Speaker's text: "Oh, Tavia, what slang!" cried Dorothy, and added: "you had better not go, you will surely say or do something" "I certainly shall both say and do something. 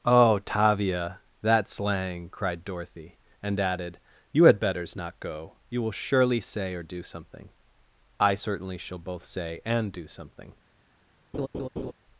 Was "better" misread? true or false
true